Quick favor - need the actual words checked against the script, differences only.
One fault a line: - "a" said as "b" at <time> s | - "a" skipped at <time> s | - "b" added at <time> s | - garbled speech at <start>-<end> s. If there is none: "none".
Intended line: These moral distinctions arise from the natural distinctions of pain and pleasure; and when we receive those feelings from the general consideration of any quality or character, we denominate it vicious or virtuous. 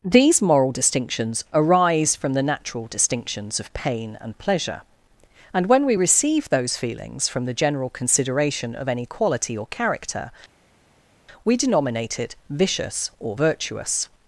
none